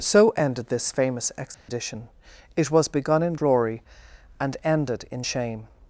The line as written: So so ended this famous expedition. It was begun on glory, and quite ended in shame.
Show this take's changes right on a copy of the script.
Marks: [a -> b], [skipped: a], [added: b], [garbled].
So [skipped: so] ended this famous expedition. It was begun [on -> in] glory, and [skipped: quite] ended in shame.